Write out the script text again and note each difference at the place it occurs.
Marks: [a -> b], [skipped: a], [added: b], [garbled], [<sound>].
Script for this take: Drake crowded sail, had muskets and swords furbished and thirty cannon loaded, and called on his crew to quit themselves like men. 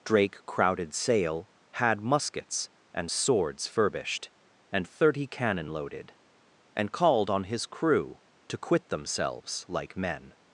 Drake crowded sail, had muskets and swords furbished and thirty cannon loaded, and called on his crew to quit themselves like men.